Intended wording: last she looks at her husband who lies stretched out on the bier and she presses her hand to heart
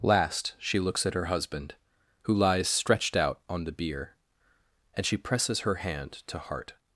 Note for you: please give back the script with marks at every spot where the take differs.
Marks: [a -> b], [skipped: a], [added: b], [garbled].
last she looks at her husband who lies stretched out on the bier and she presses her hand to heart